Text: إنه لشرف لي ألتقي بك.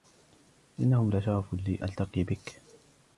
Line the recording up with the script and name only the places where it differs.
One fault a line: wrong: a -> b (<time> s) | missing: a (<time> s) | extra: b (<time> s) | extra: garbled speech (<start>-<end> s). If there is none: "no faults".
no faults